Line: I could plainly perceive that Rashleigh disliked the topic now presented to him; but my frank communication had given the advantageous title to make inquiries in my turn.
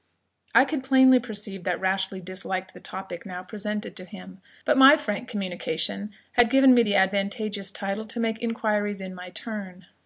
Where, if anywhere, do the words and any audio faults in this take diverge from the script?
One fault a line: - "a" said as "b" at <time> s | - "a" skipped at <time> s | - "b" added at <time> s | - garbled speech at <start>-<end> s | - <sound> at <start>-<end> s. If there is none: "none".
- "me" added at 6.7 s